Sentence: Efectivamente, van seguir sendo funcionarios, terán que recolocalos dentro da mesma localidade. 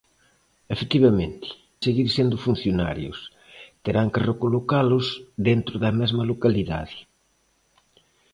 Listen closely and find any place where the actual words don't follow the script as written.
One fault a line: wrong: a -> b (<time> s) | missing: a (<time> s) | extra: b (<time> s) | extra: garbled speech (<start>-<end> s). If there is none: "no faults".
missing: van (1.5 s)